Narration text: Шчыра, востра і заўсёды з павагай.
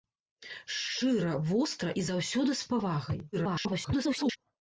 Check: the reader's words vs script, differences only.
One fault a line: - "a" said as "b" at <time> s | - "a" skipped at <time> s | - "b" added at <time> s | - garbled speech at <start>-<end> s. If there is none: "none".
- garbled speech at 3.3-4.4 s